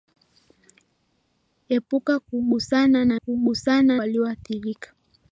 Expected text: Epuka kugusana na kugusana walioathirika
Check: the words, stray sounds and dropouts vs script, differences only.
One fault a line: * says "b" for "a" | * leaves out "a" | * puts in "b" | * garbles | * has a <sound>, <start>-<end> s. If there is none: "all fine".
all fine